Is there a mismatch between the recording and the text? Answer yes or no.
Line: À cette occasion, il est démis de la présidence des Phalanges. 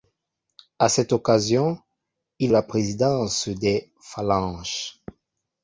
yes